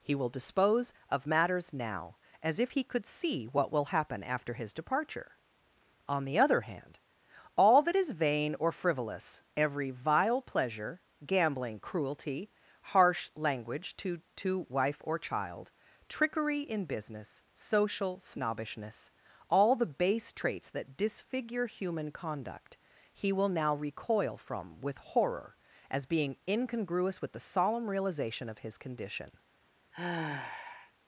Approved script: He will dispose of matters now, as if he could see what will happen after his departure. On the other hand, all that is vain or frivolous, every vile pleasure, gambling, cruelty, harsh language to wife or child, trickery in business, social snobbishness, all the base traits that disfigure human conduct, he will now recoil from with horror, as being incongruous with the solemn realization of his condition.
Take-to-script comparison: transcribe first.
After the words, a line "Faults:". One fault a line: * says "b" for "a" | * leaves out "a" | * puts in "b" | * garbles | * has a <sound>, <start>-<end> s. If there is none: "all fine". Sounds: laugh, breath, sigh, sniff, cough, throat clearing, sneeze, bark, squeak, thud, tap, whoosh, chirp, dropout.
He will dispose of matters now, as if he could see what will happen after his departure. On the other hand, all that is vain or frivolous, every vile pleasure, gambling, cruelty, harsh language to to wife or child, trickery in business, social snobbishness, all the base traits that disfigure human conduct, he will now recoil from with horror, as being incongruous with the solemn realization of his condition.
Faults:
* puts in "to"
* has a sigh, 29.9-30.9 s